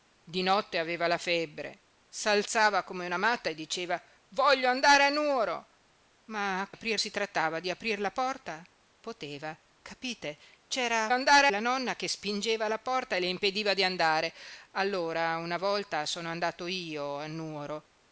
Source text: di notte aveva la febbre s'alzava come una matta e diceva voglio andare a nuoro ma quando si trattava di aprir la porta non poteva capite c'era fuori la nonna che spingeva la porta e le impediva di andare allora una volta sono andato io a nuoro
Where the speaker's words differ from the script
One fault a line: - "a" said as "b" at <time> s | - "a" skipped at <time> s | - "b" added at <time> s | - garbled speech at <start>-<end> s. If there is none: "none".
- "quando" said as "aprir" at 6.7 s
- "non" skipped at 8.6 s
- "fuori" said as "andare" at 11.1 s